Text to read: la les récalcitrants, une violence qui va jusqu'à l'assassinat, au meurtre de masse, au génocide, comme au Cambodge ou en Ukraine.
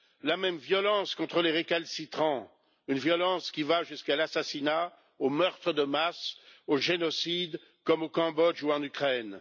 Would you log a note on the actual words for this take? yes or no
yes